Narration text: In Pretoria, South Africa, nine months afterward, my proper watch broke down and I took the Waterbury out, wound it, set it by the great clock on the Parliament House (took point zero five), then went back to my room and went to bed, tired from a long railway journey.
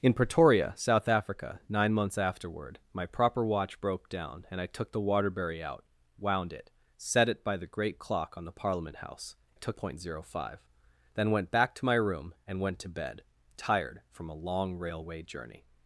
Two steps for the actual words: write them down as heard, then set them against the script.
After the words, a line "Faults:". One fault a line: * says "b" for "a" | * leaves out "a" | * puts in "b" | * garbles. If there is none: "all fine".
In Pretoria, South Africa, nine months afterward, my proper watch broke down and I took the Waterbury out, wound it, set it by the great clock on the Parliament House (took point zero five), then went back to my room and went to bed, tired from a long railway journey.
Faults:
all fine